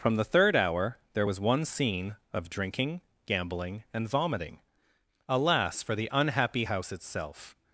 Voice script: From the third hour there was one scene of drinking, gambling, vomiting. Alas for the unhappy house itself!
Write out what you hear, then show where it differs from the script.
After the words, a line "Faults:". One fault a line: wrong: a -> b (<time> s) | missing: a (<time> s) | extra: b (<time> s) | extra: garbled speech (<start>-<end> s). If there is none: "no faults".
From the third hour there was one scene of drinking, gambling, and vomiting. Alas for the unhappy house itself!
Faults:
extra: and (3.9 s)